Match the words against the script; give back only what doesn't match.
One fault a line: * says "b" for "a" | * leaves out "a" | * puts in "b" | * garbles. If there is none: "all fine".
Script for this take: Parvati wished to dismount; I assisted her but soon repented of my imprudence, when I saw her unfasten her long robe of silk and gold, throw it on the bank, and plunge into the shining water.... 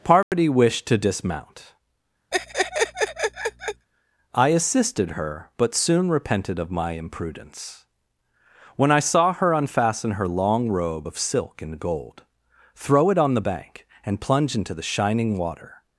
all fine